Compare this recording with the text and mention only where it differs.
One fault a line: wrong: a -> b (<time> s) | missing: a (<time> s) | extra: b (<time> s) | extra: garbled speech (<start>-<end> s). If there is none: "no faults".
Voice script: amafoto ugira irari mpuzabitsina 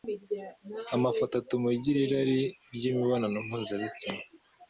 extra: atuma (1.4 s)
extra: ry'imibonano (2.8 s)